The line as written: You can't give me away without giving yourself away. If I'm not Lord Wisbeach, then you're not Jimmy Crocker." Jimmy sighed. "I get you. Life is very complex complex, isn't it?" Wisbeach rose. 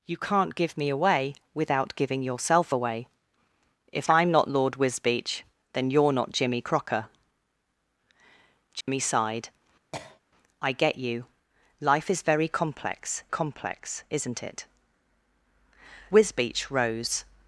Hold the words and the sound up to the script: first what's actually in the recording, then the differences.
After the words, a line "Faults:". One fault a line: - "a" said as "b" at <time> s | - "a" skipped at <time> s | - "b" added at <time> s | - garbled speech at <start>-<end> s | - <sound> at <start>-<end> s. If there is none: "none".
You can't give me away without giving yourself away. If I'm not Lord Wisbeach, then you're not Jimmy Crocker." Jimmy sighed. "I get you. Life is very complex complex, isn't it?" Wisbeach rose.
Faults:
- dropout at 8.8-8.9 s
- cough at 9.9-10.2 s